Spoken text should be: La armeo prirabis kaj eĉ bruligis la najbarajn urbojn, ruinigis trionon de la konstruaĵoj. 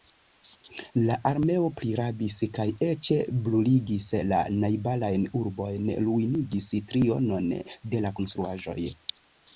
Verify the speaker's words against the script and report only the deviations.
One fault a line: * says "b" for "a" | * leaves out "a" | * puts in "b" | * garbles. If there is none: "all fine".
all fine